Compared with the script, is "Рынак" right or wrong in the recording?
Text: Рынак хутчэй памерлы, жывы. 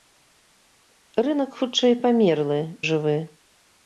right